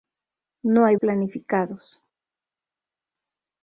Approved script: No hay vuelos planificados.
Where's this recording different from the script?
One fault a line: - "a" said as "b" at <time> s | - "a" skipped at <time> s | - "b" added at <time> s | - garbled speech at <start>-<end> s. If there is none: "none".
- "vuelos" skipped at 0.9 s